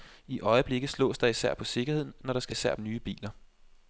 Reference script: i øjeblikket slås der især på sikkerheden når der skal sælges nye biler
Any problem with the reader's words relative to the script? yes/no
yes